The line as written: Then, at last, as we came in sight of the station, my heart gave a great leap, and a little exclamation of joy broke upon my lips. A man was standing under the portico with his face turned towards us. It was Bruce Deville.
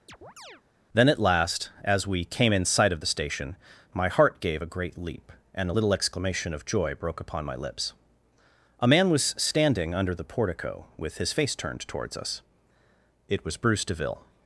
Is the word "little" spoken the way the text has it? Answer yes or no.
yes